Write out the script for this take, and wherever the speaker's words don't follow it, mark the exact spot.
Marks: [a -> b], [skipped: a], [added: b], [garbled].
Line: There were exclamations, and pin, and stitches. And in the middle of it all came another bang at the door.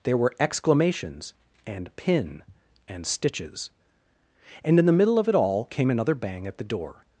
There were exclamations, and pin, and stitches. And in the middle of it all came another bang at the door.